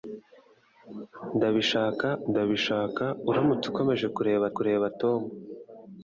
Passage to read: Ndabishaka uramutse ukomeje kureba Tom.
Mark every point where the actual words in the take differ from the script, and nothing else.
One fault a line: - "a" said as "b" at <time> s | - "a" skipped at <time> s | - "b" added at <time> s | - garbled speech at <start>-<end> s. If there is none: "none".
- "ndabishaka" added at 2.3 s
- "kureba" added at 4.6 s